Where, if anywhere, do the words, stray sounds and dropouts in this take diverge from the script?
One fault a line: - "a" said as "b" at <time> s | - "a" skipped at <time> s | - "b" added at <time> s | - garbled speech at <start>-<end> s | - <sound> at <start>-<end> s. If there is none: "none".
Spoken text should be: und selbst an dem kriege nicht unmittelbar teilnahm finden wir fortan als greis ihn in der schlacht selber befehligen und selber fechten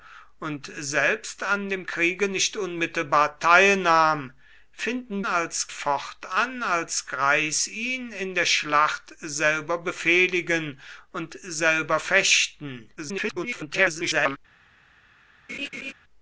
- "wir" said as "als" at 5.3 s
- garbled speech at 13.0-14.4 s
- laugh at 15.5-15.9 s